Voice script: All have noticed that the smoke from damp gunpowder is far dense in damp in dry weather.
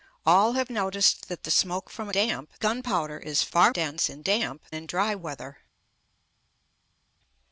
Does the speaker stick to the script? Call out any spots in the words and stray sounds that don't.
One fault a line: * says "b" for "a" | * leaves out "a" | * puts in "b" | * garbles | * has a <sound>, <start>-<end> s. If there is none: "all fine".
all fine